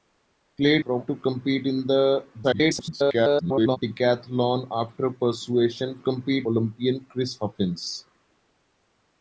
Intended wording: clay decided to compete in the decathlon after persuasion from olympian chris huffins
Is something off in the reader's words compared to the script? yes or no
yes